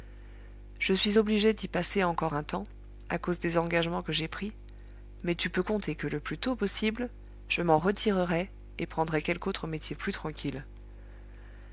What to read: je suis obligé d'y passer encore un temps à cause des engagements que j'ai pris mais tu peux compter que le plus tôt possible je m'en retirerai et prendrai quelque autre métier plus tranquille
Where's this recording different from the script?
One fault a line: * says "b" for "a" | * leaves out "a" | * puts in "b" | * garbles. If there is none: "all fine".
all fine